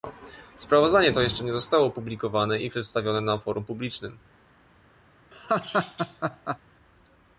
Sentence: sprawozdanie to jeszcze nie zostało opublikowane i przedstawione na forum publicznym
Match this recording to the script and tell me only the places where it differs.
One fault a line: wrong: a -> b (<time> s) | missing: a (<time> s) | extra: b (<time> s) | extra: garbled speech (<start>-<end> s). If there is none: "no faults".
no faults